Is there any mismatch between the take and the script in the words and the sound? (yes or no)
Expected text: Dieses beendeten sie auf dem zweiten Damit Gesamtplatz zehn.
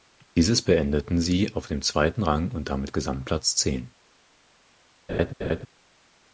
yes